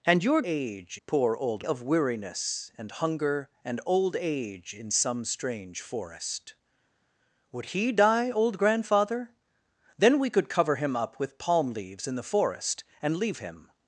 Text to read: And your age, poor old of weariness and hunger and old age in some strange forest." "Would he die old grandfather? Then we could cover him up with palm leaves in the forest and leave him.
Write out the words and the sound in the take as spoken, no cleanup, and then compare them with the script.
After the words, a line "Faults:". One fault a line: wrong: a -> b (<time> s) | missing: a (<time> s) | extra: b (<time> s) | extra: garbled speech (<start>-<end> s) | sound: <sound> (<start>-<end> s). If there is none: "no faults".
And your age, poor old of weariness and hunger and old age in some strange forest." "Would he die old grandfather? Then we could cover him up with palm leaves in the forest and leave him.
Faults:
no faults